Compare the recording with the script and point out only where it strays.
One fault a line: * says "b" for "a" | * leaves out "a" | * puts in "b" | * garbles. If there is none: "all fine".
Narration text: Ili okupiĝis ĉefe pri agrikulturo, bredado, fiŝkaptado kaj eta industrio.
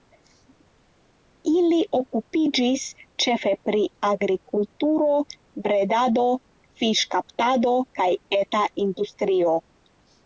all fine